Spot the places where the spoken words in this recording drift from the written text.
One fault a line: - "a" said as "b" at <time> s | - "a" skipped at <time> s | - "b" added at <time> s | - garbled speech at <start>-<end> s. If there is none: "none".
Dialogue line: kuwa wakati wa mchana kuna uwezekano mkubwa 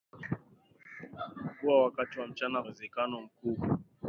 - "kuna" skipped at 2.6 s